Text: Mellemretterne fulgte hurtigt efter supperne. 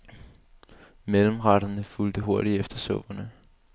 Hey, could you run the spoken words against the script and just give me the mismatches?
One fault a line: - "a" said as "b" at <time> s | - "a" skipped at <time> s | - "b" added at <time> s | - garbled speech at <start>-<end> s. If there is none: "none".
none